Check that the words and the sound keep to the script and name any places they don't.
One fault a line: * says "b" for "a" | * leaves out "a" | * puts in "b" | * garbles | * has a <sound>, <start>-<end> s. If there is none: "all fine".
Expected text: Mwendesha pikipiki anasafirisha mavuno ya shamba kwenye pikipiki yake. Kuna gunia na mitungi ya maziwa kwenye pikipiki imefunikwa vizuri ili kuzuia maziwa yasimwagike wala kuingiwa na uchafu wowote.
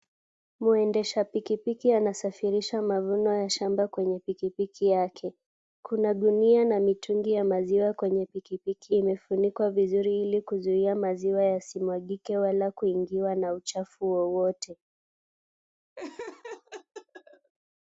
* has a laugh, 16.0-17.5 s